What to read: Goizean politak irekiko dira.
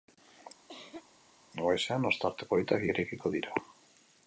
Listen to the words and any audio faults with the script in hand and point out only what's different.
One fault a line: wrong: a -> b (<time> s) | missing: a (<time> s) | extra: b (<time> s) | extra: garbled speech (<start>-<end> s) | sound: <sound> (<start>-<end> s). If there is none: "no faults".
sound: cough (0.7-1.1 s)
extra: ostarte (2.1 s)